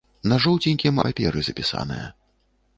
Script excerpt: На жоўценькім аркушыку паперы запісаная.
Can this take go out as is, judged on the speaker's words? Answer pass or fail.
fail